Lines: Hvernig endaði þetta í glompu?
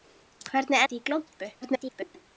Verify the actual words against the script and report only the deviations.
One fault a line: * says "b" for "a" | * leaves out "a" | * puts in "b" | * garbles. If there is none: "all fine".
* leaves out "endaði"
* garbles